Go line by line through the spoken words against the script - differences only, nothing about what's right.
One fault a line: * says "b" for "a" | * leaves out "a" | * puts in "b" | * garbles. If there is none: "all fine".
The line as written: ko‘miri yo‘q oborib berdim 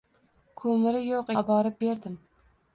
all fine